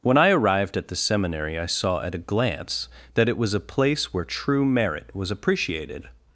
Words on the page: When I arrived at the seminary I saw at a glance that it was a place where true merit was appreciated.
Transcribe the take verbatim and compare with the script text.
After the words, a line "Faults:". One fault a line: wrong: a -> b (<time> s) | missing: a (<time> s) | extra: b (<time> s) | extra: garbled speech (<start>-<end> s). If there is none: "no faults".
When I arrived at the seminary I saw at a glance that it was a place where true merit was appreciated.
Faults:
no faults